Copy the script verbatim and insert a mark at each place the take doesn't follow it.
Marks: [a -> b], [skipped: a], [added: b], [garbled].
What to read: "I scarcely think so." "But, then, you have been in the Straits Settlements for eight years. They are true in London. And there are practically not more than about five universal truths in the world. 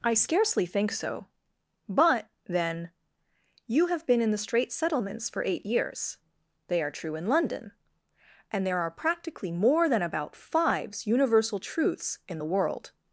"I scarcely think so." "But, then, you have been in the Straits Settlements for eight years. They are true in London. And there are practically [skipped: not] more than about [five -> fives] universal truths in the world.